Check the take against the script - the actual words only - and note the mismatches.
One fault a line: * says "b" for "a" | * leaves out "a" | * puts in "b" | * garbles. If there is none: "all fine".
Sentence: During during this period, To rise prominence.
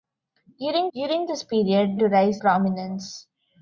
all fine